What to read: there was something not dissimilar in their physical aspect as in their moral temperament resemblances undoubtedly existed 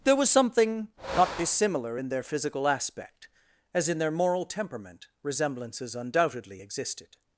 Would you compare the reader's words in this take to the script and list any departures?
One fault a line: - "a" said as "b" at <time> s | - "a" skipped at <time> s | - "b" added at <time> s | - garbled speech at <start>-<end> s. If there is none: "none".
none